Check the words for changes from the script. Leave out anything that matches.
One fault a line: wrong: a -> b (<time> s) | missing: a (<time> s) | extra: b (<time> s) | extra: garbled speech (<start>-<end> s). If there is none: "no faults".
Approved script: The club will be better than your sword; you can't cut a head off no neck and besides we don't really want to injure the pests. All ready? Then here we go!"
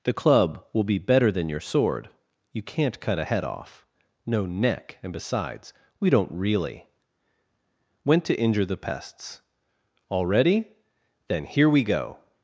wrong: want -> went (8.0 s)